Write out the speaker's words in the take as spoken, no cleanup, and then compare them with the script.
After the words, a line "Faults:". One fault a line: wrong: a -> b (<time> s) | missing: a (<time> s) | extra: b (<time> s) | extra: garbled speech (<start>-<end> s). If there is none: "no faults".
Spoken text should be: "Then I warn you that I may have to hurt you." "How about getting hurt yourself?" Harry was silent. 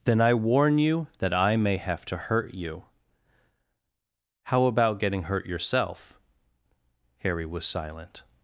"Then I warn you that I may have to hurt you." "How about getting hurt yourself?" Harry was silent.
Faults:
no faults